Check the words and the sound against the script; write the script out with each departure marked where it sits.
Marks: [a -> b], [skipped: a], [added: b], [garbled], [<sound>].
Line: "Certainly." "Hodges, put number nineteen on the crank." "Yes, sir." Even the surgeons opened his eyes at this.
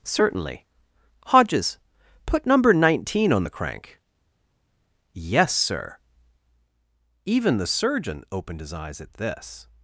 "Certainly." "Hodges, put number nineteen on the crank." "Yes, sir." Even the [surgeons -> surgeon] opened his eyes at this.